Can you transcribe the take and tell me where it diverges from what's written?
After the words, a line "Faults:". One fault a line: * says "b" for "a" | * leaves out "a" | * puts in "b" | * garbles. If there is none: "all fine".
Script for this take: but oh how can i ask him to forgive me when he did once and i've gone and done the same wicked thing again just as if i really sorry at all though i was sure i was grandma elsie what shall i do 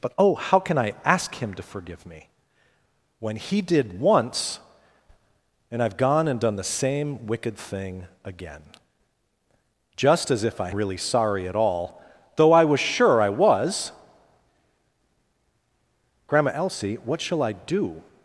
but oh how can i ask him to forgive me when he did once and i've gone and done the same wicked thing again just as if i really sorry at all though i was sure i was grandma elsie what shall i do
Faults:
all fine